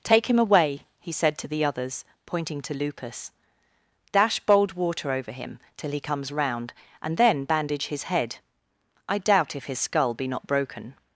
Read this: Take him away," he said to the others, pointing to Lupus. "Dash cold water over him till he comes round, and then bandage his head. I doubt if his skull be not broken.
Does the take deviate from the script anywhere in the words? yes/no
yes